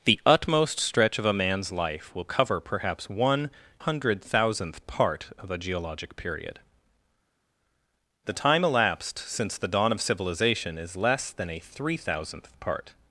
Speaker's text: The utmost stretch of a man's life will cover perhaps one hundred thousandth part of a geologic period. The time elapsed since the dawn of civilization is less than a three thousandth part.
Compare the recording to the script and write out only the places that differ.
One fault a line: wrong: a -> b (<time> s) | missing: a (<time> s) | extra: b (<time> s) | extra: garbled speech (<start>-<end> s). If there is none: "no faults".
no faults